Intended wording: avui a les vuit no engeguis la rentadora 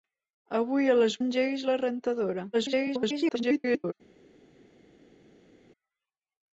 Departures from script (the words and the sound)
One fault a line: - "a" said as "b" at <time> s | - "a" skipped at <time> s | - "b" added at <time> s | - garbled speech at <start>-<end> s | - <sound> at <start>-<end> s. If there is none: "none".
- "vuit no" skipped at 1.2 s
- garbled speech at 2.5-3.9 s